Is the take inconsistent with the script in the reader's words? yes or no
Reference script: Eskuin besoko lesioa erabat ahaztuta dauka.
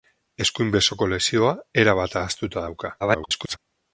yes